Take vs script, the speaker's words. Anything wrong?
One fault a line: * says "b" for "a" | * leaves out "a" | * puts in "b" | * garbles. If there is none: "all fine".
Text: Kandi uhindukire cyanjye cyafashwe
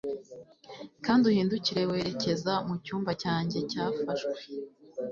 * puts in "werekeza mucyumba"